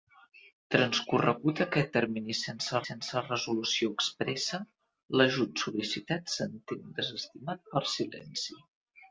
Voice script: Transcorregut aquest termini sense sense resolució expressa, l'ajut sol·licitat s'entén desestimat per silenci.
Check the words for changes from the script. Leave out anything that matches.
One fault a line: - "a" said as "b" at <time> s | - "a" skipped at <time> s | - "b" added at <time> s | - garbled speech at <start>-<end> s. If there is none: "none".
none